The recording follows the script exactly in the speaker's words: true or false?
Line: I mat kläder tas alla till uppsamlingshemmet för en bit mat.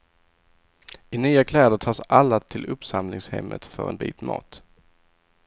false